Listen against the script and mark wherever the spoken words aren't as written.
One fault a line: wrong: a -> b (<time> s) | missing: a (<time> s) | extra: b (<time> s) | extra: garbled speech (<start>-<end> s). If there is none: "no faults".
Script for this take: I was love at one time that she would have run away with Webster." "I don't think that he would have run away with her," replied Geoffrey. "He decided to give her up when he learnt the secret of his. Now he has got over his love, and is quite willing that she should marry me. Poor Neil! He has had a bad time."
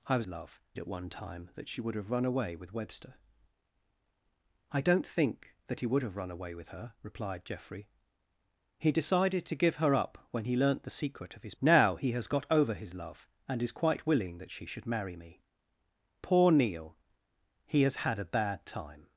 no faults